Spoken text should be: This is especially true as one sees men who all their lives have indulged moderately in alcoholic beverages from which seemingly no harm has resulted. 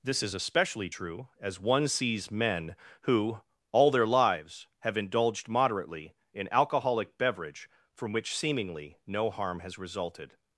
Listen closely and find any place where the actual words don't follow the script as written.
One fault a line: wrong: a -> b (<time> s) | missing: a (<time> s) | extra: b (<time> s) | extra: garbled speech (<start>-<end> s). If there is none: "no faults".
wrong: beverages -> beverage (7.2 s)